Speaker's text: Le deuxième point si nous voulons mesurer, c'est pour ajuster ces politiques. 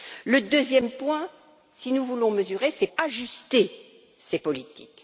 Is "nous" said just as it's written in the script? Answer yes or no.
yes